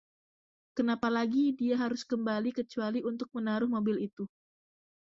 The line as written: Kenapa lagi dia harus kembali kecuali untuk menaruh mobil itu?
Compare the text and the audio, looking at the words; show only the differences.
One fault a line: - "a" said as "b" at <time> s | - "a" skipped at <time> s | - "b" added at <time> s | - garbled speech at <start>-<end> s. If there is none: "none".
none